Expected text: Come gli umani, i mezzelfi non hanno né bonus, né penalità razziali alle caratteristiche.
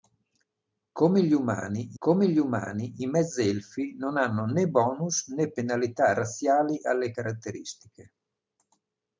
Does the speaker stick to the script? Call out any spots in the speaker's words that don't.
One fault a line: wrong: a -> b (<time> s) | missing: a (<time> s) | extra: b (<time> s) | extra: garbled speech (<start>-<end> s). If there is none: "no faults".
extra: come gli umani (2.0 s)